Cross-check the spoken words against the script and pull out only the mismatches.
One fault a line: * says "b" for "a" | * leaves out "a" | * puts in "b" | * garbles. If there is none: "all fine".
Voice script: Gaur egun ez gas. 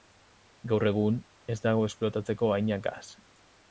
* puts in "dago esplotatzeko haina"